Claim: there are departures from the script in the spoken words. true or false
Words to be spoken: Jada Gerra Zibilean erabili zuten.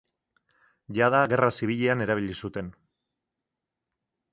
false